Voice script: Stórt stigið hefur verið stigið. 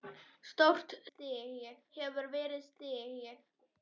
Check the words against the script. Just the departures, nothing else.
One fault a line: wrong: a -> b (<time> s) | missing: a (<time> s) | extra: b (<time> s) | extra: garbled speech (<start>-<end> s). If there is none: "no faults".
no faults